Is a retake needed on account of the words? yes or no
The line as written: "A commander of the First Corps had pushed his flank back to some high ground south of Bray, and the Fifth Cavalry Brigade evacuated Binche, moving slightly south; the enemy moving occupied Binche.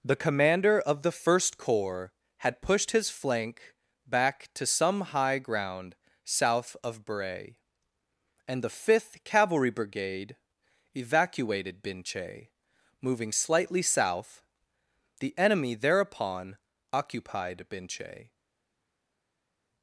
yes